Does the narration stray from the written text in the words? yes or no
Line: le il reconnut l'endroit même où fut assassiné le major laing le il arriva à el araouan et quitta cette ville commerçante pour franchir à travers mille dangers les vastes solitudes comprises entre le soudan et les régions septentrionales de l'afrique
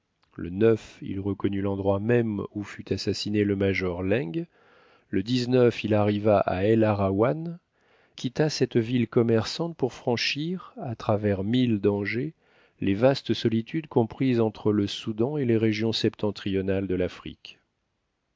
yes